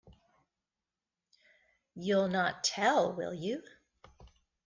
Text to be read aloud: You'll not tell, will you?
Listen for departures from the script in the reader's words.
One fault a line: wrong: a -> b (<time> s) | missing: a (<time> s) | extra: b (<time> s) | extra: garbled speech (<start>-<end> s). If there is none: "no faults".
no faults